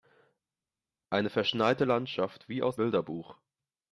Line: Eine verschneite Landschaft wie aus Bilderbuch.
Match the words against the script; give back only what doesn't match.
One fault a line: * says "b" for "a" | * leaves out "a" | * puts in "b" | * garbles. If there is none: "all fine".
all fine